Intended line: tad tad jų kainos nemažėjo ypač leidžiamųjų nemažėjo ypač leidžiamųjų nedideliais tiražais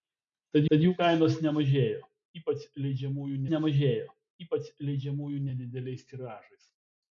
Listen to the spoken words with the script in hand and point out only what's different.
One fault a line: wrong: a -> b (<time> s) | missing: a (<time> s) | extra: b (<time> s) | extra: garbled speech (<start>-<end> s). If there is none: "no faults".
no faults